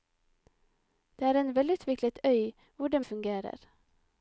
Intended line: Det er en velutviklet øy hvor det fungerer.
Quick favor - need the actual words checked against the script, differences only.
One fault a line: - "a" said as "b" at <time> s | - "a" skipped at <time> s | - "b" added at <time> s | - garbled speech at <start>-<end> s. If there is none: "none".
none